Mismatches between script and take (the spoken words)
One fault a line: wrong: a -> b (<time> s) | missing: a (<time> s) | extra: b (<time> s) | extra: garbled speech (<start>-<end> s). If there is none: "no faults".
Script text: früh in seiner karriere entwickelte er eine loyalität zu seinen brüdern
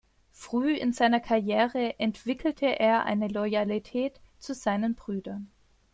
no faults